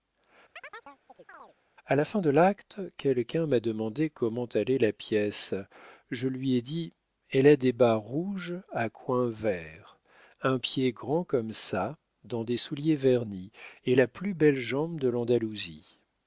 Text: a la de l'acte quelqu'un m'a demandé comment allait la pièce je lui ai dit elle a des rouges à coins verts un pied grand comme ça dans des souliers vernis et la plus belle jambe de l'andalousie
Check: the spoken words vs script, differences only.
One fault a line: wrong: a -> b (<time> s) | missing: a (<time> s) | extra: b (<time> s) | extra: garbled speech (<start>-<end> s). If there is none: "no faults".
extra: fin (2.0 s)
extra: bas (7.7 s)